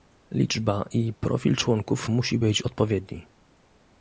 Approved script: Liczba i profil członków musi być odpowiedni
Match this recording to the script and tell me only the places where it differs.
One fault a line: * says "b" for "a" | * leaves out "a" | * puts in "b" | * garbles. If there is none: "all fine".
all fine